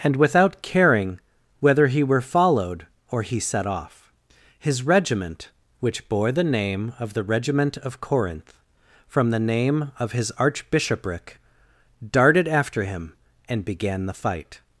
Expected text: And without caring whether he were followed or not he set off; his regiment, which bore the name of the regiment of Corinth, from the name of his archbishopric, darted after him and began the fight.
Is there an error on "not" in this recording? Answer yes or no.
yes